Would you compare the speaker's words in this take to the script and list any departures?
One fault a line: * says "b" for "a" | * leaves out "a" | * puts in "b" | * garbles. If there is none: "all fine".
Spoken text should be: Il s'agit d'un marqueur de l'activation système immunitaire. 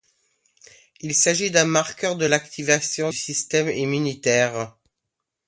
all fine